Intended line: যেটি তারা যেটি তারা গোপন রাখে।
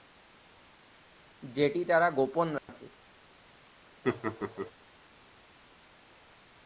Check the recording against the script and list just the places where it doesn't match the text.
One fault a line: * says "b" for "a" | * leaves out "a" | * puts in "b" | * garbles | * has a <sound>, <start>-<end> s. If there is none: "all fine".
* leaves out "যেটি তারা"
* has a dropout, 2.6-2.7 s
* has a laugh, 4.0-4.7 s